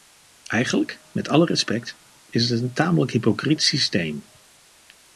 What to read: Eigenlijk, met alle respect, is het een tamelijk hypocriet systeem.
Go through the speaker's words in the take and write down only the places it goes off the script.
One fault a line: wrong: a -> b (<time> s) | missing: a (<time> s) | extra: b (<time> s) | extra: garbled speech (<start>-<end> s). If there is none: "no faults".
no faults